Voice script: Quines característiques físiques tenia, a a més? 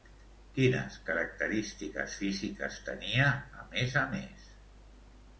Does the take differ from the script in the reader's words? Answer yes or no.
yes